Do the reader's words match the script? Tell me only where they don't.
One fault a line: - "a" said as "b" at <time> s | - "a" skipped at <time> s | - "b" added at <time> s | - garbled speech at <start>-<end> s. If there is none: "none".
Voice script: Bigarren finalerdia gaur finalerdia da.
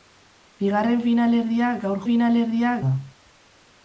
none